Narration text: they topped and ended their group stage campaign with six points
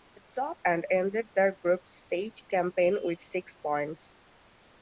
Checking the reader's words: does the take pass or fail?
pass